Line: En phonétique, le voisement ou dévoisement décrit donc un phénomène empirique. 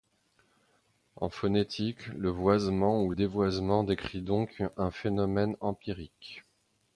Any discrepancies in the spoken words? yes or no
no